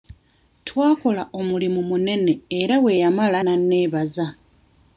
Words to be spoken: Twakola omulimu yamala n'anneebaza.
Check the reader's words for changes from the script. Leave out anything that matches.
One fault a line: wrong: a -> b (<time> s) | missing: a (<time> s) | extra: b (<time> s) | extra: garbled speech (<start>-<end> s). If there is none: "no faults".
extra: munene era bwe (1.9 s)